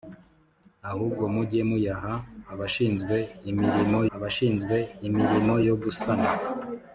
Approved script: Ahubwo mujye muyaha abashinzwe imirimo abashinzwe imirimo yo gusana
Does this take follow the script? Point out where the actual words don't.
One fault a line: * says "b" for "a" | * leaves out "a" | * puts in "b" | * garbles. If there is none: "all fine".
all fine